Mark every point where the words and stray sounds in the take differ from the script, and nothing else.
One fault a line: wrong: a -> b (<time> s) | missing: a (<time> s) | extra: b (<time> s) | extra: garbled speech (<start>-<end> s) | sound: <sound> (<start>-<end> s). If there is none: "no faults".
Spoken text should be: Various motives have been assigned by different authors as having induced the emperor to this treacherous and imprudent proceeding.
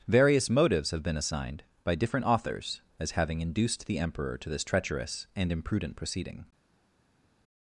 no faults